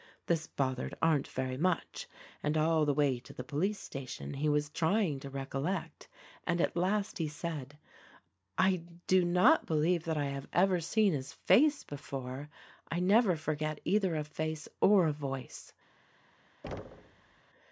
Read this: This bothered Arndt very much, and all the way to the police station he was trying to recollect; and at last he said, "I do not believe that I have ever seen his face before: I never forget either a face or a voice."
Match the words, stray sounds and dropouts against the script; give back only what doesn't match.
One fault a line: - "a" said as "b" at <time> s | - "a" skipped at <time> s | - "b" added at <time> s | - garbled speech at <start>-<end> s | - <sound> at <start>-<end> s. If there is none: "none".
- thud at 16.6-17.4 s